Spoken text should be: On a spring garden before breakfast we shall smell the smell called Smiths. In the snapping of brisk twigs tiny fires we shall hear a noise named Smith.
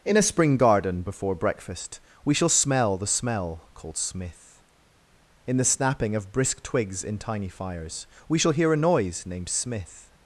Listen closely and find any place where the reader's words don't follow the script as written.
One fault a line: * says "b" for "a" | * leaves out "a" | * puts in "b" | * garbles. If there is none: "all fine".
* says "In" for "On"
* says "Smith" for "Smiths"
* puts in "in"